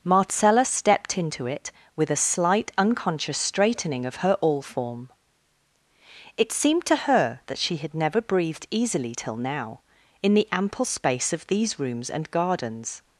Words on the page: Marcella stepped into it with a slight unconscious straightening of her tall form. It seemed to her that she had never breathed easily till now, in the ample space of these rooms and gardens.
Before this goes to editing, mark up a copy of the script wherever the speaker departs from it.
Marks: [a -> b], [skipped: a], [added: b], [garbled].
Marcella stepped into it with a slight unconscious straightening of her [tall -> all] form. It seemed to her that she had never breathed easily till now, in the ample space of these rooms and gardens.